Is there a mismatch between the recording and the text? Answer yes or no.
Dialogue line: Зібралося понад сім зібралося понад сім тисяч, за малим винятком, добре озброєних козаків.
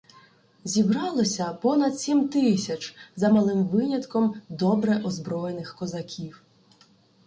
yes